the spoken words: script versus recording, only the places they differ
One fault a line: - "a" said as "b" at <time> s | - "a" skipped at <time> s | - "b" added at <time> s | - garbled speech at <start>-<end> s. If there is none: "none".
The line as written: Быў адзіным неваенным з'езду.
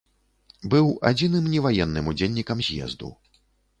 - "удзельнікам" added at 2.1 s